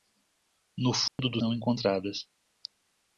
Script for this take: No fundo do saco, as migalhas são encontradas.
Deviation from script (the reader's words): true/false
true